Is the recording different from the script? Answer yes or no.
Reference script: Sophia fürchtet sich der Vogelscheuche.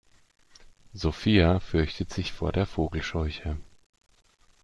yes